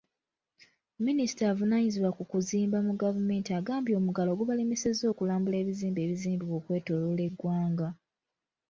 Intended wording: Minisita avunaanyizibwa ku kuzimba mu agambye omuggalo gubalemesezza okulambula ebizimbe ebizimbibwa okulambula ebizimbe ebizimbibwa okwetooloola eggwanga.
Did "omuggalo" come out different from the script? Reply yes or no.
no